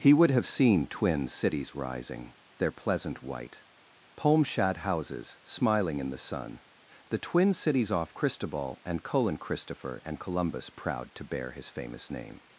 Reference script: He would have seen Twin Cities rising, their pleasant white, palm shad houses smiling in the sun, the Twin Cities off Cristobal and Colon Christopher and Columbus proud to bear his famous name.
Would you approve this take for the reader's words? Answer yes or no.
yes